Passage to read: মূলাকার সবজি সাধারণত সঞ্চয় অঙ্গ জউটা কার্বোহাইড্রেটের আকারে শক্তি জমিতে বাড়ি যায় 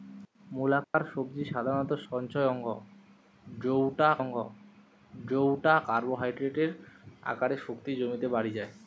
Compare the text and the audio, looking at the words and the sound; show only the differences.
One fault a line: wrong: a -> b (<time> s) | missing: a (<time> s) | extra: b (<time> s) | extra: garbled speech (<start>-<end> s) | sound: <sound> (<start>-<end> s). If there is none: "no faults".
sound: dropout (0.8-0.9 s)
extra: অঙ্গ জউটা (4.2 s)